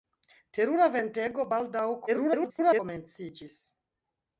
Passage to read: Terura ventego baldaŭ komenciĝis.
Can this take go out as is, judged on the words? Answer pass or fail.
fail